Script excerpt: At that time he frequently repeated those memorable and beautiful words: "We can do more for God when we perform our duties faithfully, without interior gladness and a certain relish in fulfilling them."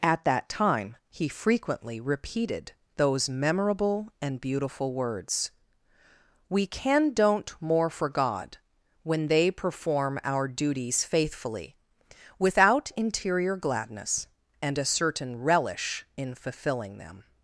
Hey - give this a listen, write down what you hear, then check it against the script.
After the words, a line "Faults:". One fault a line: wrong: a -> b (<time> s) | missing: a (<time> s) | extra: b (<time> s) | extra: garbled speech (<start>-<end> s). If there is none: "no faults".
At that time he frequently repeated those memorable and beautiful words: "We can don't more for God when they perform our duties faithfully, without interior gladness and a certain relish in fulfilling them."
Faults:
wrong: do -> don't (7.1 s)
wrong: we -> they (9.3 s)